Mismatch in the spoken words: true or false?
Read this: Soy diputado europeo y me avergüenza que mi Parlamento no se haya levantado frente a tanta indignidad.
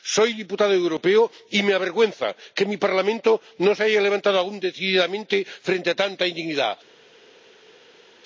true